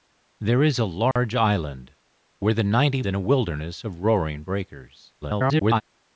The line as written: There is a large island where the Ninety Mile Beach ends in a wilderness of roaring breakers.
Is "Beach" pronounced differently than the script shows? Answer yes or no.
yes